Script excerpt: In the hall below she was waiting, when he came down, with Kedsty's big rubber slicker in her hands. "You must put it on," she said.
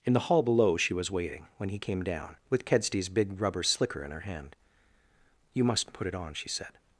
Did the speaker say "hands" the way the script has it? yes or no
no